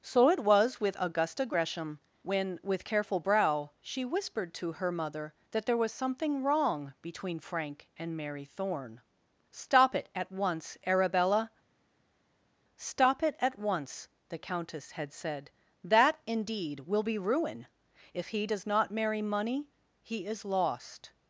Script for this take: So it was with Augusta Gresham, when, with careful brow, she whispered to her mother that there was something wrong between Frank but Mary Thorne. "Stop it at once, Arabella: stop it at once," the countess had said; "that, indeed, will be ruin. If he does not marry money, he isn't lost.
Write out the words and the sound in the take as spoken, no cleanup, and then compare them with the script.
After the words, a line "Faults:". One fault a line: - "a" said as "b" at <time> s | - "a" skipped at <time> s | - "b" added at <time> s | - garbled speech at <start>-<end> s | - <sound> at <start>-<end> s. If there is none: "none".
So it was with Augusta Gresham, when, with careful brow, she whispered to her mother that there was something wrong between Frank and Mary Thorne. "Stop it at once, Arabella: stop it at once," the countess had said; "that, indeed, will be ruin. If he does not marry money, he is lost.
Faults:
- "but" said as "and" at 8.0 s
- "isn't" said as "is" at 20.3 s